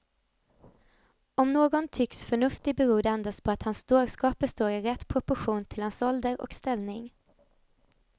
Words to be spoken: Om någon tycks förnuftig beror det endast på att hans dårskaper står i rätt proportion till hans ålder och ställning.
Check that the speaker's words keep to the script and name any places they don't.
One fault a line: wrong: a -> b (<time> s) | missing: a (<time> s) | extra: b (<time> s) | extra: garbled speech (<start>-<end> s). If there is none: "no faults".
no faults